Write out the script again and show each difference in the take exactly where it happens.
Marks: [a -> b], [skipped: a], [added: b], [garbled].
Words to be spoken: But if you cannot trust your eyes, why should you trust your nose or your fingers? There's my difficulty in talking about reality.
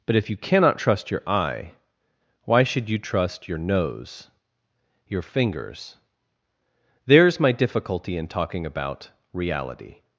But if you cannot trust your [eyes, -> eye] why should you trust your nose [skipped: or] your fingers? There's my difficulty in talking about reality.